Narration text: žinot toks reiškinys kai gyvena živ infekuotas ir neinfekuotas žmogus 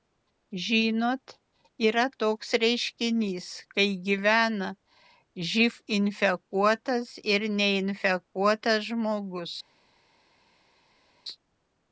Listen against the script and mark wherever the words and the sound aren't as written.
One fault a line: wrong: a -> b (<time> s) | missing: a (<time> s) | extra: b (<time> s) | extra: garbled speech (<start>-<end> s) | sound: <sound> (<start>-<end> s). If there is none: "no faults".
extra: yra (1.9 s)